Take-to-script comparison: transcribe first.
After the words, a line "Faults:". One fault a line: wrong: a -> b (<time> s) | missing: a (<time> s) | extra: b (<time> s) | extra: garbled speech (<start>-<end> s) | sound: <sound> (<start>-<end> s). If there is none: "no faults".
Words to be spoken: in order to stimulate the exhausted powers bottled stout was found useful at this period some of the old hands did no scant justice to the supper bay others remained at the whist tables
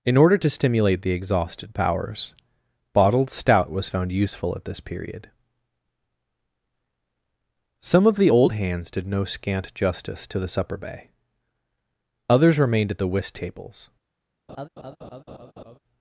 in order to stimulate the exhausted powers bottled stout was found useful at this period some of the old hands did no scant justice to the supper bay others remained at the whist tables
Faults:
sound: laugh (14.5-15.8 s)